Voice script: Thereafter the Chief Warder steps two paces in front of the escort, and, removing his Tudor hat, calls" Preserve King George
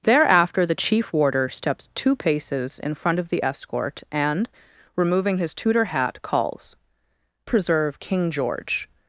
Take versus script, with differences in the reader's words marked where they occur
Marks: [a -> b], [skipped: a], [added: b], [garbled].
Thereafter the Chief Warder steps two paces in front of the escort, and, removing his Tudor hat, calls" Preserve King George